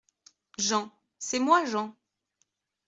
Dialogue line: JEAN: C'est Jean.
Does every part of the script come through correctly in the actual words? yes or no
no